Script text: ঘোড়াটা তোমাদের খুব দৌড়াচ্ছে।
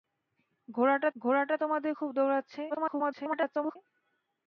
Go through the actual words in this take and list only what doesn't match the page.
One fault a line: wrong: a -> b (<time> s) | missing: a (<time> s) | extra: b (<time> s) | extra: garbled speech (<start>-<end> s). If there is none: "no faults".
extra: ঘোড়াটা (1.2 s)
extra: garbled speech (2.7-3.8 s)